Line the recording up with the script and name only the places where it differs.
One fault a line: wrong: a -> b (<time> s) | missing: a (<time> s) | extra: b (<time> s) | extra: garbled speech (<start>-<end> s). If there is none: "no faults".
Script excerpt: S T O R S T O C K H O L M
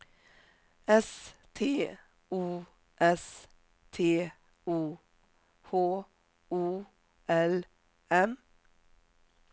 missing: R (2.6 s)
missing: C K (5.0 s)